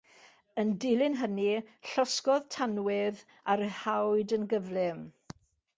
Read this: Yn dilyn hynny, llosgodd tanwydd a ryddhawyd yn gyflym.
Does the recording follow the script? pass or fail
pass